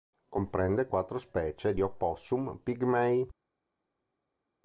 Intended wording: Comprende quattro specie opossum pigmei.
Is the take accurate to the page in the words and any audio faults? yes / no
yes